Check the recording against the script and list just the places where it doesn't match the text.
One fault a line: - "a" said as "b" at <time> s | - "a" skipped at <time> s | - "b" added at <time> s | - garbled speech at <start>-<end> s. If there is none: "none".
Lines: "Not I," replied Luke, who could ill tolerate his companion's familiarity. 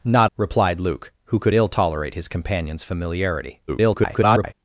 - "I" skipped at 0.3 s
- garbled speech at 3.7-4.5 s